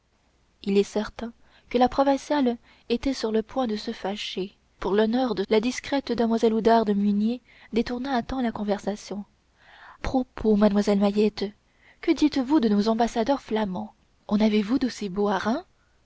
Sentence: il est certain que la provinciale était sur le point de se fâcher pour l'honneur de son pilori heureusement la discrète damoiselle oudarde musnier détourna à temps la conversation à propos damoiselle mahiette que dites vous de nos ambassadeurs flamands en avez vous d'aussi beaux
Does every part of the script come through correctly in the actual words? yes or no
no